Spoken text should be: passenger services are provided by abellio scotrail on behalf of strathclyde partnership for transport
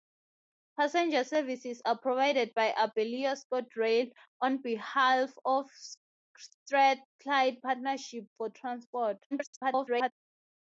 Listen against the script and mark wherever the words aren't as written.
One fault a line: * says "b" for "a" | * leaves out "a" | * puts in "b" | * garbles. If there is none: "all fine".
* garbles